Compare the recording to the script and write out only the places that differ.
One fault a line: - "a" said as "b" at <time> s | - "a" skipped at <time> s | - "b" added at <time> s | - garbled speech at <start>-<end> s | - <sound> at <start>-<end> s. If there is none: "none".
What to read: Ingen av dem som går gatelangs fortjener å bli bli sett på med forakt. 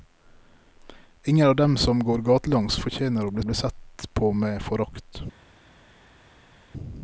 none